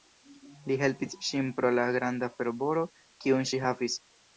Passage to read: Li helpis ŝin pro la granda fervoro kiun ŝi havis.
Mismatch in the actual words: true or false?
false